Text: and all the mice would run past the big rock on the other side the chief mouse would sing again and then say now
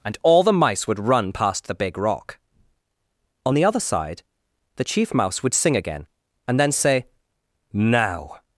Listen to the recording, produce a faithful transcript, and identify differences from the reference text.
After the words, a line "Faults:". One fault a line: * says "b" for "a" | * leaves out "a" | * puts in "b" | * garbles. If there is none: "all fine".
and all the mice would run past the big rock on the other side the chief mouse would sing again and then say now
Faults:
all fine